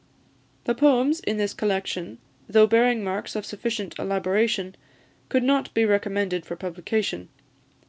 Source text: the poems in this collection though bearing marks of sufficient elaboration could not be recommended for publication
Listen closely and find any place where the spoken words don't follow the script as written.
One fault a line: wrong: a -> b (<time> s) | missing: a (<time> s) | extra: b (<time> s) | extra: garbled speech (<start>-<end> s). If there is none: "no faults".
no faults